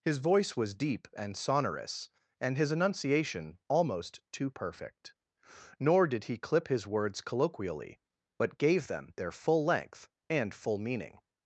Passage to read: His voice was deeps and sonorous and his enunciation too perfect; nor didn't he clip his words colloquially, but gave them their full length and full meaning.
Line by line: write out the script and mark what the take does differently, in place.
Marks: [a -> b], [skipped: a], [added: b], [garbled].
His voice was [deeps -> deep] and sonorous and his enunciation [added: almost] too perfect; nor [didn't -> did] he clip his words colloquially, but gave them their full length and full meaning.